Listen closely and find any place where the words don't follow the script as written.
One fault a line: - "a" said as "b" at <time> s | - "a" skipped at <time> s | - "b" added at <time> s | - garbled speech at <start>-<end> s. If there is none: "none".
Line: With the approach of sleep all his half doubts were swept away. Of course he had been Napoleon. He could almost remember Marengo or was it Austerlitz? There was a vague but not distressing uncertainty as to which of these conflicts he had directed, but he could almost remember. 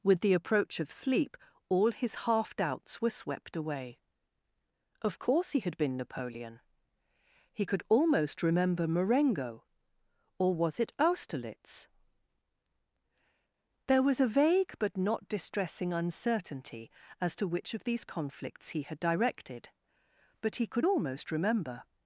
none